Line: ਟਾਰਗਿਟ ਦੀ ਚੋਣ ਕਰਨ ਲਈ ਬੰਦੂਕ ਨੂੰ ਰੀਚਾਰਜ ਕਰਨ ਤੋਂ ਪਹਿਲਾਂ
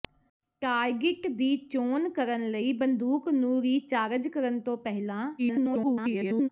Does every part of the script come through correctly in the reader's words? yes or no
no